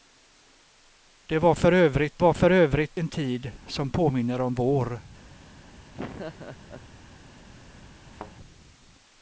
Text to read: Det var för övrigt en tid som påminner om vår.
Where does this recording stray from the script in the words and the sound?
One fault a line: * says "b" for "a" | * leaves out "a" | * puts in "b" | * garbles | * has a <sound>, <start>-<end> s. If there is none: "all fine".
* puts in "var för övrigt"
* has a laugh, 5.9-6.9 s
* has a thud, 8.1-8.3 s